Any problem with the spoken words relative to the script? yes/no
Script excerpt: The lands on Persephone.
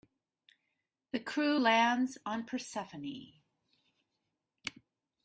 yes